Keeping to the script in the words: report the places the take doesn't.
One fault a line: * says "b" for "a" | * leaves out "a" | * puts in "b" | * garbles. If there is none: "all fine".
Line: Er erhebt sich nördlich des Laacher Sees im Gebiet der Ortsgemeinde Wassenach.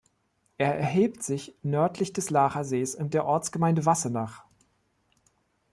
* leaves out "Gebiet"